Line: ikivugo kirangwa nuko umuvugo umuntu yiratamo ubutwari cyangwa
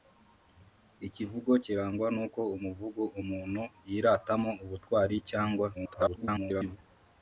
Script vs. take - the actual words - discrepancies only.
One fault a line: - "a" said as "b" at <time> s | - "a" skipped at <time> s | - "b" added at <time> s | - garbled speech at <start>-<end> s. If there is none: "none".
- garbled speech at 5.7-6.8 s